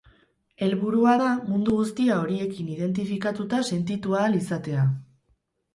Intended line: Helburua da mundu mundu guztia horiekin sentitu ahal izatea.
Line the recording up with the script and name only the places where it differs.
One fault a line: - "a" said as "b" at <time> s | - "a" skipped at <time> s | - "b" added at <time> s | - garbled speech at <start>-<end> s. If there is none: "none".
- "mundu" skipped at 1.8 s
- "identifikatuta" added at 2.8 s